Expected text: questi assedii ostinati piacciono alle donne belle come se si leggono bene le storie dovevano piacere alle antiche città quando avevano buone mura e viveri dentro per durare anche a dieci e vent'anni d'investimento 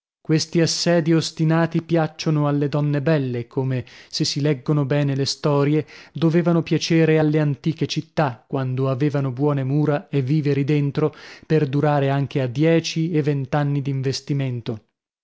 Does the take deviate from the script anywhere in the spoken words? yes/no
no